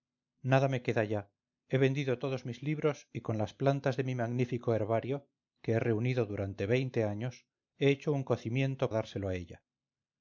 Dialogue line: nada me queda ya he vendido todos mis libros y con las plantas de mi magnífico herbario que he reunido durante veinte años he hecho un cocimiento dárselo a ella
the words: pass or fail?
pass